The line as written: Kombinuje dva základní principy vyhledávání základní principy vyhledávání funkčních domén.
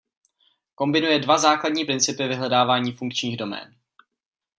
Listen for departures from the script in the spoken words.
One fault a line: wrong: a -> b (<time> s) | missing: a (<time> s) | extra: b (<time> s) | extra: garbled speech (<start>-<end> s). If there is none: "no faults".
missing: základní principy vyhledávání (2.9 s)